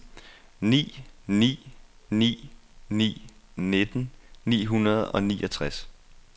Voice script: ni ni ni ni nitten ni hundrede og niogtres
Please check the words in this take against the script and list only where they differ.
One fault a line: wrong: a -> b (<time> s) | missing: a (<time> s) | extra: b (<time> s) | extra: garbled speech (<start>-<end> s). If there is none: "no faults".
no faults